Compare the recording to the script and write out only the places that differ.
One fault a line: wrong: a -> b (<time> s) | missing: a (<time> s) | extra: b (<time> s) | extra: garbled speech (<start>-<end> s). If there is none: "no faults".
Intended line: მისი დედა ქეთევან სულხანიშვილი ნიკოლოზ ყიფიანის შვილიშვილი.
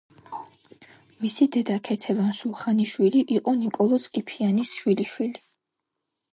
extra: იყო (3.4 s)